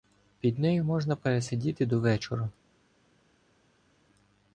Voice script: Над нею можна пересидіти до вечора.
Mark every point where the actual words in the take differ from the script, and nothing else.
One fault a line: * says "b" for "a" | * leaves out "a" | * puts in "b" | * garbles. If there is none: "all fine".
* says "Під" for "Над"